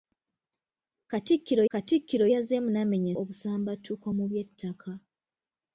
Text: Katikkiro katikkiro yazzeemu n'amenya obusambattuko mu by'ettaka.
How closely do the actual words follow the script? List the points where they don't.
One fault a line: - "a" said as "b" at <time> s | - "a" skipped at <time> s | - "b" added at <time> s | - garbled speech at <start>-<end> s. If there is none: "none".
none